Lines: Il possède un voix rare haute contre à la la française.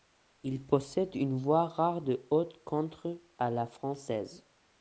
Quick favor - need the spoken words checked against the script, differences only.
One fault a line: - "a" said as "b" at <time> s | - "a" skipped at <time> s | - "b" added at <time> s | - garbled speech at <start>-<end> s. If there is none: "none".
- "un" said as "une" at 1.1 s
- "de" added at 2.0 s
- "la" skipped at 3.6 s